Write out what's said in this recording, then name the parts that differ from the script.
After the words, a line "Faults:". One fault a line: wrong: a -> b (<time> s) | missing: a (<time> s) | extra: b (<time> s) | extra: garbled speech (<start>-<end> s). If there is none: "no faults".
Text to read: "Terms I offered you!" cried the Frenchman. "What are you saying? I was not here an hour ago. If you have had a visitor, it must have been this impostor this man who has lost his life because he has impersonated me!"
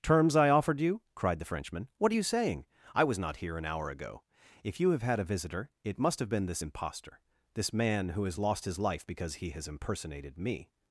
"Terms I offered you!" cried the Frenchman. "What are you saying? I was not here an hour ago. If you have had a visitor, it must have been this impostor this man who has lost his life because he has impersonated me!"
Faults:
no faults